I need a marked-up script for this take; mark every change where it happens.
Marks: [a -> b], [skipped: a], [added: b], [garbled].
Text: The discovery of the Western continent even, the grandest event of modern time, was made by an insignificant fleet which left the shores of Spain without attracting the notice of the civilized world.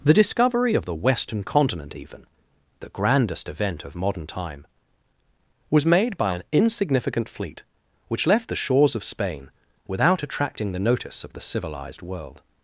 The discovery of the Western continent even, the grandest event of modern time, was made by an insignificant fleet which left the shores of Spain without attracting the notice of the civilized world.